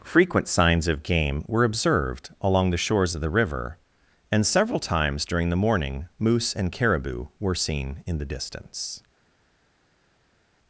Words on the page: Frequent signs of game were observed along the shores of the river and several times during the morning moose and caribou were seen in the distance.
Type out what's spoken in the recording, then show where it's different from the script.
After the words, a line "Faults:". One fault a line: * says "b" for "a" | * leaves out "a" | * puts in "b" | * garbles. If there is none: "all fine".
Frequent signs of game were observed along the shores of the river and several times during the morning moose and caribou were seen in the distance.
Faults:
all fine